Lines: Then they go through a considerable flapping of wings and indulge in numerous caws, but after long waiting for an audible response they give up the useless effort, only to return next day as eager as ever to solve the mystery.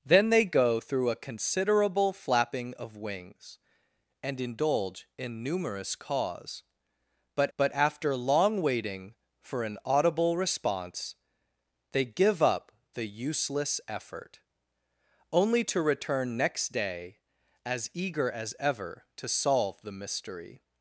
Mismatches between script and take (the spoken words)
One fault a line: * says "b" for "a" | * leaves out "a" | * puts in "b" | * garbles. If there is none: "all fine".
* puts in "but"